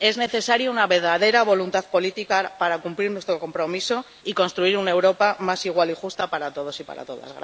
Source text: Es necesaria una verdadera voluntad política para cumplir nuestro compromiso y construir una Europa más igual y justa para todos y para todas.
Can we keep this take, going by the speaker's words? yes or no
yes